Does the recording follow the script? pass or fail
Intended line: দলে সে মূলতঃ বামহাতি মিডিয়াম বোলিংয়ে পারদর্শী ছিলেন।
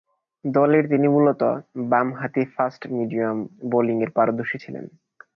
fail